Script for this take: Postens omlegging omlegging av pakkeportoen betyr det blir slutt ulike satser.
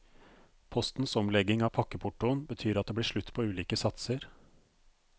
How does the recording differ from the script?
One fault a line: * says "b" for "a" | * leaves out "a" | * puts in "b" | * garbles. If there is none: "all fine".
* leaves out "omlegging"
* puts in "at"
* puts in "på"